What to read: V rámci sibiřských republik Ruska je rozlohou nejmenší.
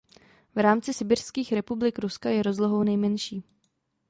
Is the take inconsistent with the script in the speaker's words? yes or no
no